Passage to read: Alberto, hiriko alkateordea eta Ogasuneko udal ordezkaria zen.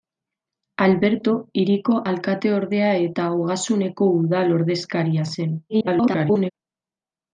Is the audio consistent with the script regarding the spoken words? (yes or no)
no